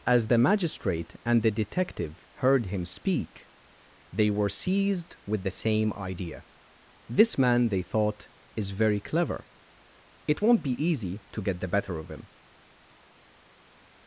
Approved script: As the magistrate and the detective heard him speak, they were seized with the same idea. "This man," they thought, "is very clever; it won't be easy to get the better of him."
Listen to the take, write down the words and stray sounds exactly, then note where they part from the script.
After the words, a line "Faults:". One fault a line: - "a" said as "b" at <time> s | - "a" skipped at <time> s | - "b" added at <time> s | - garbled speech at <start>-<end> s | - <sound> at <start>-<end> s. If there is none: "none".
As the magistrate and the detective heard him speak, they were seized with the same idea. "This man," they thought, "is very clever; it won't be easy to get the better of him."
Faults:
none